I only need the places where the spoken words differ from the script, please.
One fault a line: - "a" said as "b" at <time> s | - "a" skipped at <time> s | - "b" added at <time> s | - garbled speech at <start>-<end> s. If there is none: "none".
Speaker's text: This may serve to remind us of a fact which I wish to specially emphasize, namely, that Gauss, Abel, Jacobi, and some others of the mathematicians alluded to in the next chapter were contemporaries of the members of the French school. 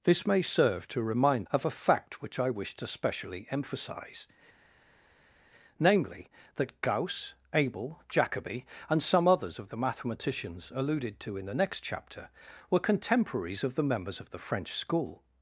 - "us" skipped at 1.5 s